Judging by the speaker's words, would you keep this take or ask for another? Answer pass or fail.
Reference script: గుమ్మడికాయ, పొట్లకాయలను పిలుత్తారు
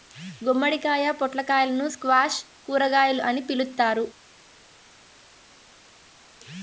fail